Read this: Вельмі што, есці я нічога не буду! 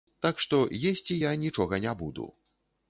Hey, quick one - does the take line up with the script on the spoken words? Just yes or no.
no